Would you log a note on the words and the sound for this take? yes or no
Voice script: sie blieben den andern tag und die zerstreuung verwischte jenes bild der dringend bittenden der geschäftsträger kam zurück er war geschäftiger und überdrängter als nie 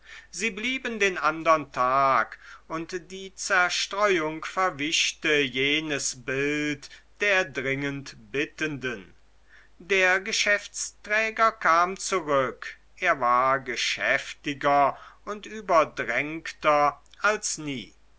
no